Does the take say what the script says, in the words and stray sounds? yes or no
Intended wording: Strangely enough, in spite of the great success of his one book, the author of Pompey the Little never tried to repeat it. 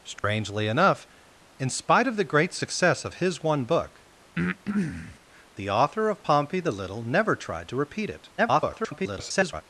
no